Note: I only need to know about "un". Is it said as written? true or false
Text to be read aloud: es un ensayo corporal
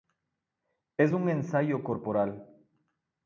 true